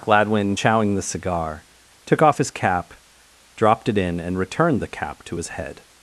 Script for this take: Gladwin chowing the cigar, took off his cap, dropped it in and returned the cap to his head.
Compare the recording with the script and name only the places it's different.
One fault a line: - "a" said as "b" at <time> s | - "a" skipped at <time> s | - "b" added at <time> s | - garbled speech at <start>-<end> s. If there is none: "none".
none